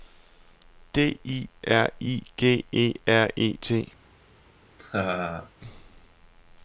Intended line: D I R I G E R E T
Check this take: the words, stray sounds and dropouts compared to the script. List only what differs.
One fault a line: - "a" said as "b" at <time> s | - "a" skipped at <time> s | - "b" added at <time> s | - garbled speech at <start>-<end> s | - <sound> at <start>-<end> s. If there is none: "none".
- laugh at 4.8-5.5 s